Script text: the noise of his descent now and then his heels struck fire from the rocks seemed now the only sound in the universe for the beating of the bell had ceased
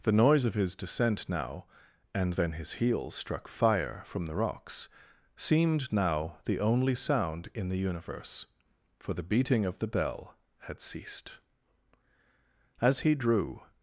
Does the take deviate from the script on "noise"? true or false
false